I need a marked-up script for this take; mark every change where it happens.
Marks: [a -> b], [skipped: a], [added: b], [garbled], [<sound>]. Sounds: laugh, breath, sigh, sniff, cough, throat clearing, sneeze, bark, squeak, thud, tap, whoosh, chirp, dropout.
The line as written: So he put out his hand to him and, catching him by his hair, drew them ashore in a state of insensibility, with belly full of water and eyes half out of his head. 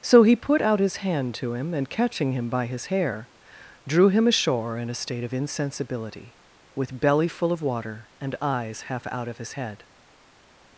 So he put out his hand to him and, catching him by his hair, drew [them -> him] ashore in a state of insensibility, with belly full of water and eyes half out of his head.